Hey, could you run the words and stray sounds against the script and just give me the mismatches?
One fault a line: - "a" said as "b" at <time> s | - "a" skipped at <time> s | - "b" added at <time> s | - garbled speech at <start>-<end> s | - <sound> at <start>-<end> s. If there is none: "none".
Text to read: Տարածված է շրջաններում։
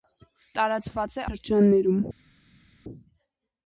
none